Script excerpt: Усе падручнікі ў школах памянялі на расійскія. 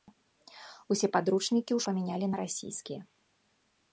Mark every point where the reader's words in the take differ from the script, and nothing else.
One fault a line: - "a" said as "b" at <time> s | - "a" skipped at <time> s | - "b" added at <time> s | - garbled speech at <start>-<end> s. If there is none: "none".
- "школах" skipped at 1.8 s